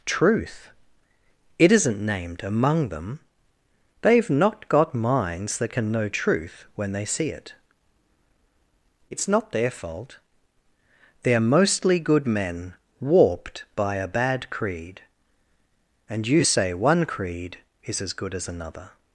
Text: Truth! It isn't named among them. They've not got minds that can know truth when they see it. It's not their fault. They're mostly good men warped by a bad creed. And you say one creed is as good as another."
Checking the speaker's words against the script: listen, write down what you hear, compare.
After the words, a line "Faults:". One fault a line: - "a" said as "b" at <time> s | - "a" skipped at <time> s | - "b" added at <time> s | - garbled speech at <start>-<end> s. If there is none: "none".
Truth! It isn't named among them. They've not got minds that can know truth when they see it. It's not their fault. They're mostly good men warped by a bad creed. And you say one creed is as good as another."
Faults:
none